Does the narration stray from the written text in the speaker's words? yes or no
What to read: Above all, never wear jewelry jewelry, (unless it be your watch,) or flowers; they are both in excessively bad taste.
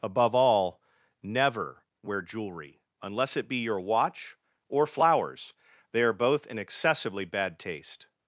yes